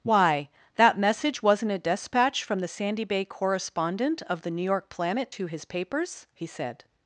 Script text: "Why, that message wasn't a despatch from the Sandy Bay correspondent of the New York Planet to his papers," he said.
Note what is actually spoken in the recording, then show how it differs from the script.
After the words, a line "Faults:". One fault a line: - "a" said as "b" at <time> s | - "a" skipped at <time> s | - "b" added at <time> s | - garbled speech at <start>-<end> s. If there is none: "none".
"Why, that message wasn't a despatch from the Sandy Bay correspondent of the New York Planet to his papers," he said.
Faults:
none